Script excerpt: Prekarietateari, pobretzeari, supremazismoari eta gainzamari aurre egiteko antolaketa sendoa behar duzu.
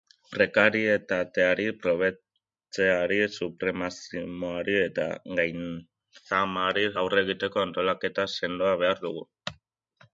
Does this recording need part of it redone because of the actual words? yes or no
yes